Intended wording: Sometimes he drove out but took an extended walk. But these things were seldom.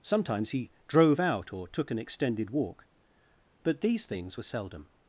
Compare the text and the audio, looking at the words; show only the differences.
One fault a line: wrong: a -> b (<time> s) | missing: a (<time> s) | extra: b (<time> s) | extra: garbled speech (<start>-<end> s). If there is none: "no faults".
wrong: but -> or (1.5 s)